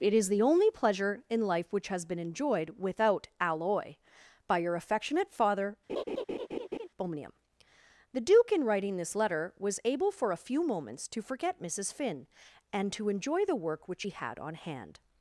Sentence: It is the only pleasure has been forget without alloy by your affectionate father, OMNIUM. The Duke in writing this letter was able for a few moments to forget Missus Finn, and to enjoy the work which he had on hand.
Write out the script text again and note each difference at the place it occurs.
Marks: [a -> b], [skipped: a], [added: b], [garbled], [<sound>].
It is the only pleasure [added: in life which] has been [forget -> enjoyed] without alloy by your affectionate father, [laugh] OMNIUM. The Duke in writing this letter was able for a few moments to forget Missus Finn, and to enjoy the work which he had on hand.